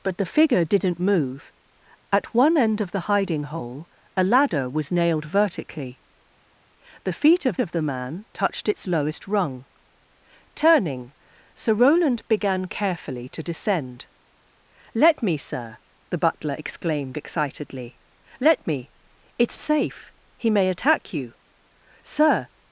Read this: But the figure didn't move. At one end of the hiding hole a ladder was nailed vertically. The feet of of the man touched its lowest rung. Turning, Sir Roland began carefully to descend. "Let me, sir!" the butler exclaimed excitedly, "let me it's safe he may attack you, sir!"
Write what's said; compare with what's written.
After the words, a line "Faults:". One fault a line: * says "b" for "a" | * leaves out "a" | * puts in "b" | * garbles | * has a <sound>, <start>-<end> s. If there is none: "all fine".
But the figure didn't move. At one end of the hiding hole a ladder was nailed vertically. The feet of of the man touched its lowest rung. Turning, Sir Roland began carefully to descend. "Let me, sir!" the butler exclaimed excitedly, "let me it's safe he may attack you, sir!"
Faults:
all fine